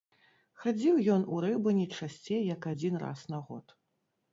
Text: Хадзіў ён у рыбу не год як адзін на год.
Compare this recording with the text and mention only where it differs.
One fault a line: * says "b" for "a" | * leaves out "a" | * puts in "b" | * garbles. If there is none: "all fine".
* says "часцей" for "год"
* puts in "раз"